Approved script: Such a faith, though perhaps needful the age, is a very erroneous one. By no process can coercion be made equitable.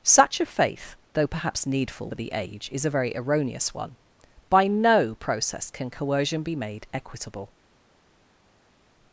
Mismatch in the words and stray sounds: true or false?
false